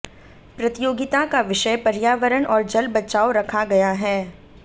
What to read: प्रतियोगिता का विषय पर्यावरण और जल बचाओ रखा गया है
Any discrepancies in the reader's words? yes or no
no